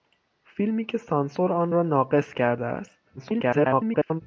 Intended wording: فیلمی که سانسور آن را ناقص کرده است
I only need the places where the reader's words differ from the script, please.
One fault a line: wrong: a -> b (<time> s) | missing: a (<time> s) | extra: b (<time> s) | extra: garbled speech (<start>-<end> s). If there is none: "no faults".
extra: garbled speech (3.2-4.2 s)